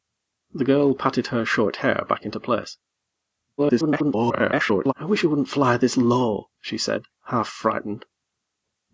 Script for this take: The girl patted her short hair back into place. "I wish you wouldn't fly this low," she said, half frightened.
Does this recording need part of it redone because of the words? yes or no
yes